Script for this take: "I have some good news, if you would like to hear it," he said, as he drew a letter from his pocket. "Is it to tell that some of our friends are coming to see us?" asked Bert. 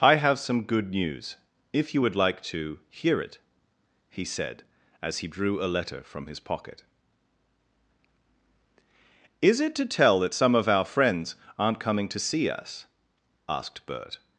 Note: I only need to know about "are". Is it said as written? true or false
false